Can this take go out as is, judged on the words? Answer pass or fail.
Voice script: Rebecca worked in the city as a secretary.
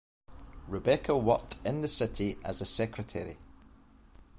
pass